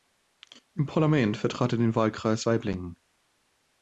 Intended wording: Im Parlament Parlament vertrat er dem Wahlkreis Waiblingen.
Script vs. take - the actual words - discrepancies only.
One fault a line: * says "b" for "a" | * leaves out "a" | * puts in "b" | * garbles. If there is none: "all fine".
* leaves out "Parlament"
* says "den" for "dem"